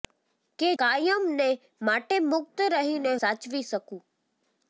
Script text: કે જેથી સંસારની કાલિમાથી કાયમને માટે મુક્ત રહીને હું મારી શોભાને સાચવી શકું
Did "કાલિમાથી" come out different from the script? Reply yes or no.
yes